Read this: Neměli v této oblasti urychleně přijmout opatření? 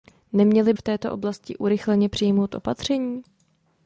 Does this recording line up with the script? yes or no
yes